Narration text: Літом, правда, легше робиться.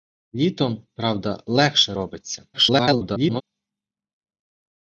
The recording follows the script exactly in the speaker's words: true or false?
false